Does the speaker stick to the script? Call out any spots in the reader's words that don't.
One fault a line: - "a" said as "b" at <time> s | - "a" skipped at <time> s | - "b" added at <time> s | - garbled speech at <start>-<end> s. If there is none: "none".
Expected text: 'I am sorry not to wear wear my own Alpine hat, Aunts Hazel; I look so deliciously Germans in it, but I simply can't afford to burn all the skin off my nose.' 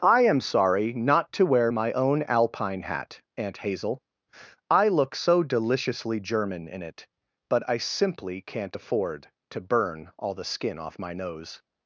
- "wear" skipped at 1.7 s
- "Aunts" said as "Aunt" at 3.4 s
- "Germans" said as "German" at 6.2 s